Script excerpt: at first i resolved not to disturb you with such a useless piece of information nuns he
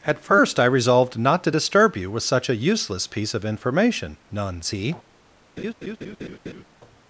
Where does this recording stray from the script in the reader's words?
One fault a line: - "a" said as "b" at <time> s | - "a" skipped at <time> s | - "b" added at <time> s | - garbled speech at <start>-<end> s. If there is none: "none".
none